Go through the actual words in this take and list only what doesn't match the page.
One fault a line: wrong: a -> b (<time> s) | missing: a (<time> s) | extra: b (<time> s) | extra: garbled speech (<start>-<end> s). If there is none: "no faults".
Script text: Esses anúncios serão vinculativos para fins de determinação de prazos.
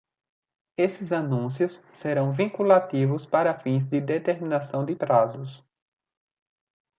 no faults